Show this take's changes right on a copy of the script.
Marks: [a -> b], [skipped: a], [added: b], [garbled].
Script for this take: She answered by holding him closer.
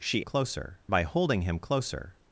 She [answered -> closer] by holding him closer.